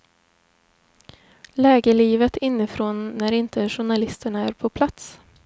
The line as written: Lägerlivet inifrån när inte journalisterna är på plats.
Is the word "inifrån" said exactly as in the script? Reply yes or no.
yes